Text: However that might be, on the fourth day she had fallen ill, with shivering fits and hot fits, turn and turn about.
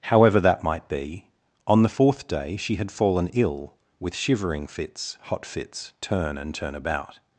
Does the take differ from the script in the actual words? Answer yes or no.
yes